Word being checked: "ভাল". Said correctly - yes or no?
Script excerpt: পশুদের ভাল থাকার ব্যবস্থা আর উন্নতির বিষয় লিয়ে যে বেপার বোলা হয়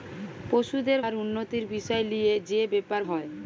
no